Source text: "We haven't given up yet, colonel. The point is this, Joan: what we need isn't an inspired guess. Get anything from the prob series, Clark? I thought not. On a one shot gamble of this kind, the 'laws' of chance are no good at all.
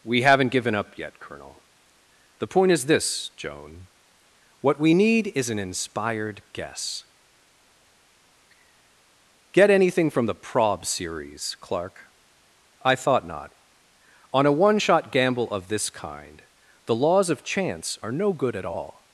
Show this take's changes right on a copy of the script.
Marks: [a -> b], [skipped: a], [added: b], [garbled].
"We haven't given up yet, colonel. The point is this, Joan: what we need [isn't -> is] an inspired guess. Get anything from the prob series, Clark? I thought not. On a one shot gamble of this kind, the 'laws' of chance are no good at all.